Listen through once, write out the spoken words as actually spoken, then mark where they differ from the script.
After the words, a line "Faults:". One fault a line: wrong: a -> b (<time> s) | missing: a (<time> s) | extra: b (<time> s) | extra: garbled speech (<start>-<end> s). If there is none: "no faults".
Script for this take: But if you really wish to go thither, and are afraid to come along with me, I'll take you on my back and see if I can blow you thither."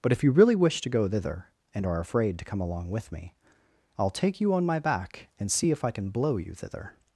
But if you really wish to go thither, and are afraid to come along with me, I'll take you on my back and see if I can blow you thither."
Faults:
no faults